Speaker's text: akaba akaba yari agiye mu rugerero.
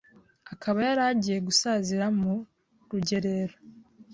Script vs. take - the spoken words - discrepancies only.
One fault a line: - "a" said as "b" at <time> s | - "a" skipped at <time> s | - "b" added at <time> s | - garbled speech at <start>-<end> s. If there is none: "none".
- "akaba" skipped at 0.8 s
- "gusazira" added at 1.5 s